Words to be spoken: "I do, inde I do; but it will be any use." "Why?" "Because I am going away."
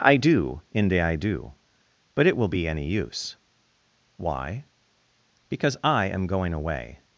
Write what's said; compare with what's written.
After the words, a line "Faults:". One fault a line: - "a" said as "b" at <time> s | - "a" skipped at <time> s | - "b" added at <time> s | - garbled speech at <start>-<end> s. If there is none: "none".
"I do, inde I do; but it will be any use." "Why?" "Because I am going away."
Faults:
none